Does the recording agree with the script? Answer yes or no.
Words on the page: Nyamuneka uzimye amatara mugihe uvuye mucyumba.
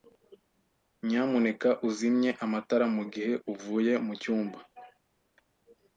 yes